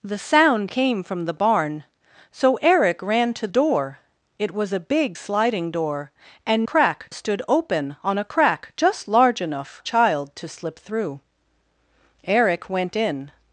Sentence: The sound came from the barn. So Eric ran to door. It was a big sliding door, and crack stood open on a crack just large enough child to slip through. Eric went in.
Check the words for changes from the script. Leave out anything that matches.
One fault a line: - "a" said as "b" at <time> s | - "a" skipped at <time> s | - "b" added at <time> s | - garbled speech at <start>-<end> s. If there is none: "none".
none